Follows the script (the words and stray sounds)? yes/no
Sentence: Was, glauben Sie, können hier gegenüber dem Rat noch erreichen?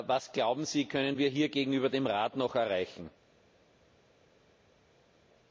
no